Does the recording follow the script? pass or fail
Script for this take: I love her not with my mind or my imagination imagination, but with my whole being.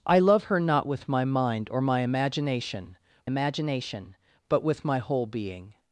pass